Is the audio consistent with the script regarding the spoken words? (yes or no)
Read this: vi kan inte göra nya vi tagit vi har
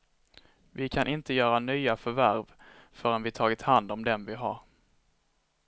no